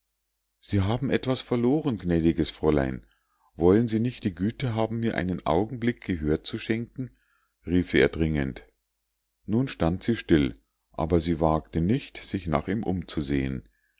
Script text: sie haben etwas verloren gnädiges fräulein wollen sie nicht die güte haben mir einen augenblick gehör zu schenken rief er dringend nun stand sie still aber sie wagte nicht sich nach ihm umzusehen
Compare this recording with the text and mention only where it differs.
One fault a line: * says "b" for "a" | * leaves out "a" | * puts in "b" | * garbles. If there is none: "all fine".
all fine